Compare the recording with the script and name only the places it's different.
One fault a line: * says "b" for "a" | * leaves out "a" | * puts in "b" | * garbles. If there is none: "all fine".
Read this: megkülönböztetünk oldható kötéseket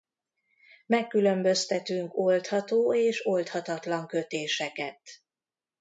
* puts in "és oldhatatlan"